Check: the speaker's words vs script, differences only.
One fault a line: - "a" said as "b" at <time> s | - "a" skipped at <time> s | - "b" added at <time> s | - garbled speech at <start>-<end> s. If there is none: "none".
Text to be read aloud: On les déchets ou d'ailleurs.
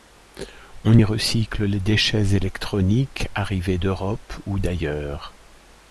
- "y recycle" added at 0.9 s
- "électroniques arrivés d'Europe" added at 2.3 s